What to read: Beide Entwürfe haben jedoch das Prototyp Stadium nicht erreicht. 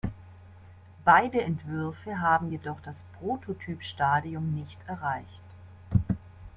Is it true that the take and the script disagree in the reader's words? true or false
false